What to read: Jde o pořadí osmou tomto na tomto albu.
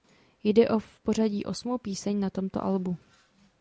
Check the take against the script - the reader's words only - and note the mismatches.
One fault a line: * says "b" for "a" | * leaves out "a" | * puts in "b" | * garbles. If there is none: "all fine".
* puts in "v"
* says "píseň" for "tomto"